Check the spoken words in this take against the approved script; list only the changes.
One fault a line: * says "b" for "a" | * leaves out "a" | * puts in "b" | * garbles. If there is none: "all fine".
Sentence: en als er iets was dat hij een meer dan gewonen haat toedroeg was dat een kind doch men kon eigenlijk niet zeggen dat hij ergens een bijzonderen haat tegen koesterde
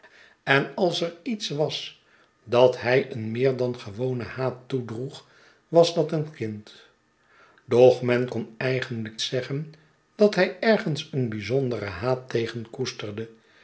* leaves out "niet"